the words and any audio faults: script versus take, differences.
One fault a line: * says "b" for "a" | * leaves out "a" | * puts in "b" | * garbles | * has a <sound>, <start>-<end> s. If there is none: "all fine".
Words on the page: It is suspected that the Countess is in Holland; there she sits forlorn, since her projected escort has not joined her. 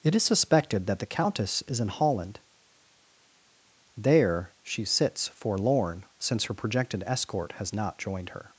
all fine